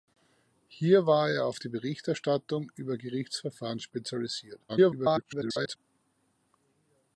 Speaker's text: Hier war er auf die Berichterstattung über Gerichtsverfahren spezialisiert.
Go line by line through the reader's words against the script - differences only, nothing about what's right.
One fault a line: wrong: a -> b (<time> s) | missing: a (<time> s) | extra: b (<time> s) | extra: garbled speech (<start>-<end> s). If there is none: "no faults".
extra: garbled speech (4.7-5.8 s)